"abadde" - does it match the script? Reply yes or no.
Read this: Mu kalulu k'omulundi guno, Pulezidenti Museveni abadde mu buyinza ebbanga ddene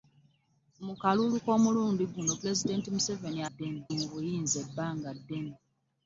no